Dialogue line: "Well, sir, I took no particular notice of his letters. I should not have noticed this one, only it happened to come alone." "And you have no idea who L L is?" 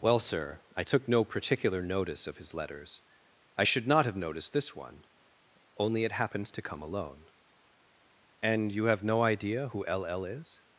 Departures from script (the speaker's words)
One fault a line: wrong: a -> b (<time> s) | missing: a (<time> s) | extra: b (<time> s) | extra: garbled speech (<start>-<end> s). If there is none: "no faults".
wrong: happened -> happens (6.1 s)